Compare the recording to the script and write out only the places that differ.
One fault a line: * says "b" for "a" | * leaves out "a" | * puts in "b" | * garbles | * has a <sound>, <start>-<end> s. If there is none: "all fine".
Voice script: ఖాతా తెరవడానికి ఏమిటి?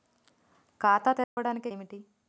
* has a dropout, 1.2-1.4 s